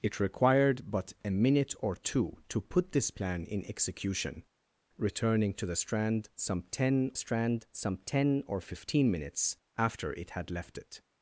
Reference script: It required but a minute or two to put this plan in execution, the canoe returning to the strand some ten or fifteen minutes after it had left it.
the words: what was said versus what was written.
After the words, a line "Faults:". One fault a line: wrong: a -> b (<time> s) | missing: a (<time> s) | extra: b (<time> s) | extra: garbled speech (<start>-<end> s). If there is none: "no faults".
It required but a minute or two to put this plan in execution, returning to the strand some ten strand some ten or fifteen minutes after it had left it.
Faults:
missing: the canoe (4.4 s)
extra: strand some ten (7.1 s)